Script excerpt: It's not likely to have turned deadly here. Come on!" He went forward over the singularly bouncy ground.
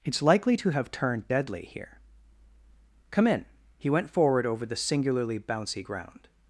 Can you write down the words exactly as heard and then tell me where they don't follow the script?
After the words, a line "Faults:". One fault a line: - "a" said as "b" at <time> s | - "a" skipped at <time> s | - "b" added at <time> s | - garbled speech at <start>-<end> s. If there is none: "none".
It's likely to have turned deadly here. Come in!" He went forward over the singularly bouncy ground.
Faults:
- "not" skipped at 0.2 s
- "on" said as "in" at 3.3 s